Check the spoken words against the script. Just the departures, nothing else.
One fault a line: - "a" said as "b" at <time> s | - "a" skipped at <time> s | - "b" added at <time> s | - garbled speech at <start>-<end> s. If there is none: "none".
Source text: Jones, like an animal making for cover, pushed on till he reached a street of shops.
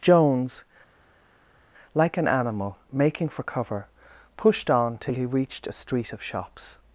none